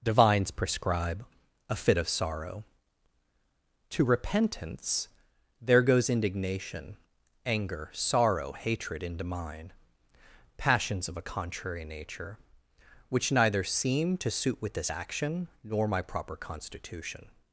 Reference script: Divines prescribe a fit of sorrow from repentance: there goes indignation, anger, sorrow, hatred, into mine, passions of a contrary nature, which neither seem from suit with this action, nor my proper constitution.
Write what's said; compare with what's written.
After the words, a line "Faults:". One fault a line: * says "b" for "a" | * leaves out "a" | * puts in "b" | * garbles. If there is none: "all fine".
Divines prescribe a fit of sorrow to repentance: there goes indignation, anger, sorrow, hatred, into mine, passions of a contrary nature, which neither seem to suit with this action, nor my proper constitution.
Faults:
* says "to" for "from"
* says "to" for "from"